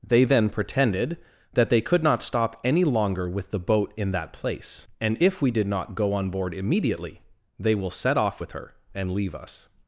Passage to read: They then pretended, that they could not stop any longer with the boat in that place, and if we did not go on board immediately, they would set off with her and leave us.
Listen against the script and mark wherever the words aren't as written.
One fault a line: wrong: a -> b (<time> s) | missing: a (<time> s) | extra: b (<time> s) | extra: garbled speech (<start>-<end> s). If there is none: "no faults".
wrong: would -> will (7.8 s)